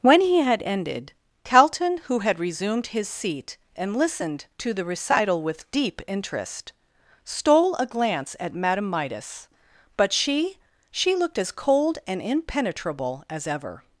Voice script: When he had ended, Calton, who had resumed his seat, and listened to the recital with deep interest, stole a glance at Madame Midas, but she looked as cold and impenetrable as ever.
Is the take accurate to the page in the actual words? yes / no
no